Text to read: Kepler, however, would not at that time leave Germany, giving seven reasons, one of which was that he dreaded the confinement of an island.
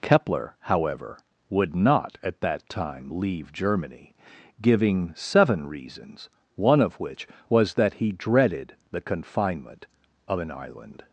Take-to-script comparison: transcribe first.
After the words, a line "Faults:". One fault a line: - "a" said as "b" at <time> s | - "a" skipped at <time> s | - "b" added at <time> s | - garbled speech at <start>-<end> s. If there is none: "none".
Kepler, however, would not at that time leave Germany, giving seven reasons, one of which was that he dreaded the confinement of an island.
Faults:
none